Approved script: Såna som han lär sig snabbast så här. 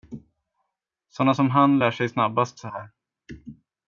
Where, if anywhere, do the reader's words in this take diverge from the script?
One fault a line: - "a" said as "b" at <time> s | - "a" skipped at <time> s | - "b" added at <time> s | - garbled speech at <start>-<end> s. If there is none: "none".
none